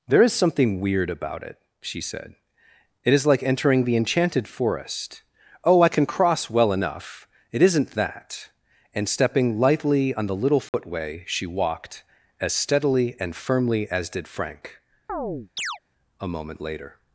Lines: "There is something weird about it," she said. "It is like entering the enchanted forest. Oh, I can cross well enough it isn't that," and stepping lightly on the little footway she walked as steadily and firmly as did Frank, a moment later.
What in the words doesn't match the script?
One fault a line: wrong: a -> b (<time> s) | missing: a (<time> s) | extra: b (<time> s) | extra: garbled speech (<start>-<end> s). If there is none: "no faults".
no faults